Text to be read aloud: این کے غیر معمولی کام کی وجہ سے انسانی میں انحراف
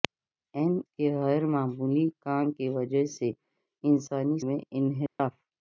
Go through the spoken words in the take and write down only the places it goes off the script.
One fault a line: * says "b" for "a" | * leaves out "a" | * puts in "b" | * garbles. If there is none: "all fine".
all fine